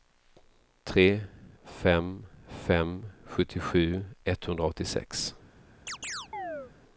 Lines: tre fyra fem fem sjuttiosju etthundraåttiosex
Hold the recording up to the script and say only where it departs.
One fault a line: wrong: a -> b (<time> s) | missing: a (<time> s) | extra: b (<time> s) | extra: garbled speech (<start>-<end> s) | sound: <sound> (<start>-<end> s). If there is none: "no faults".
missing: fyra (1.2 s)
sound: chirp (5.9-6.7 s)